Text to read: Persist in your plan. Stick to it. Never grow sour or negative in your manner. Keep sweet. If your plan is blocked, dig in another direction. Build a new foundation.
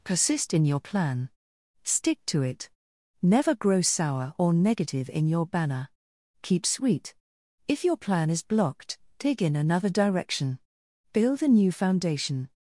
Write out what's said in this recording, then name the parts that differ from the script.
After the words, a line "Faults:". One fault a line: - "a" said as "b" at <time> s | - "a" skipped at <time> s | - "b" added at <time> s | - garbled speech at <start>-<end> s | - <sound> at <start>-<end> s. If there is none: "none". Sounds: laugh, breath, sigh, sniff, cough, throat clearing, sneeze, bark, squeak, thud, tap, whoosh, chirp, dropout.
Persist in your plan. Stick to it. Never grow sour or negative in your banner. Keep sweet. If your plan is blocked, dig in another direction. Build a new foundation.
Faults:
- "manner" said as "banner" at 5.5 s